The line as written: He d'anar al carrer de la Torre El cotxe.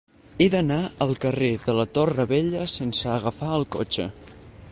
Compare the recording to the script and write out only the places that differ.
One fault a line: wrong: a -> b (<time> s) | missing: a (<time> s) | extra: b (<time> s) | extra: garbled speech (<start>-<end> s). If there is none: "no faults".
extra: Vella sense agafar (2.3 s)